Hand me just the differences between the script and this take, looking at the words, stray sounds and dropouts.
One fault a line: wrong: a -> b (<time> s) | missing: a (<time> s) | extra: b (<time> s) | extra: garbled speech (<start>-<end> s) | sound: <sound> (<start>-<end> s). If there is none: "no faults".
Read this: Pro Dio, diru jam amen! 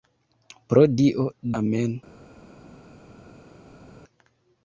missing: diru jam (1.2 s)